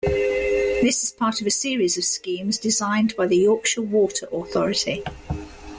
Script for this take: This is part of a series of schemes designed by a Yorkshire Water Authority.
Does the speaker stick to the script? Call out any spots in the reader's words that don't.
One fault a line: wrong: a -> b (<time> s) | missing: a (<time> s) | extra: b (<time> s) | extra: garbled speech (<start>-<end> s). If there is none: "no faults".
wrong: a -> the (3.3 s)